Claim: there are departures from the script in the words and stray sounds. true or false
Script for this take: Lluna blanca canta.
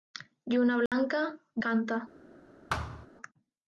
true